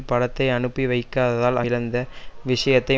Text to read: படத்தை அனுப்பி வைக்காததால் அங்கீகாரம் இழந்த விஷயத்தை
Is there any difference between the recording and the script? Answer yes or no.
yes